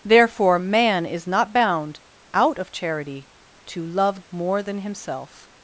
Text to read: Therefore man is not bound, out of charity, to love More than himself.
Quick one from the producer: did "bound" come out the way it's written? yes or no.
yes